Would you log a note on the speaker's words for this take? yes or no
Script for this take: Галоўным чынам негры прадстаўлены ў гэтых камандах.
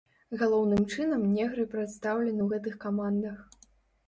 no